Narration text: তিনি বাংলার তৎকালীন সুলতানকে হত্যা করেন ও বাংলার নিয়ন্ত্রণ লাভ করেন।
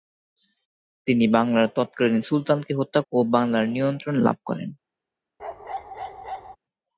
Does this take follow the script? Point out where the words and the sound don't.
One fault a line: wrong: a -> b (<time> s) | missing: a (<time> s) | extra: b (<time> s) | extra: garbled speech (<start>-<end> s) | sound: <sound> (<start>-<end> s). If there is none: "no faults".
missing: করেন (3.0 s)
sound: bark (5.4-6.6 s)